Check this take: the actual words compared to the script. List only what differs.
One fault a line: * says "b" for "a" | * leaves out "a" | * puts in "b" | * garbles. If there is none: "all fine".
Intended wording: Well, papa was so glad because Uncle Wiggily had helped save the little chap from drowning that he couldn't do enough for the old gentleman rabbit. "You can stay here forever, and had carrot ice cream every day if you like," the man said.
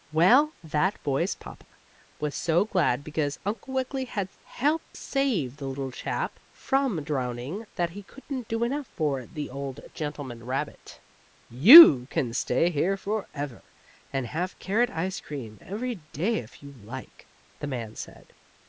* puts in "that boy's"
* says "have" for "had"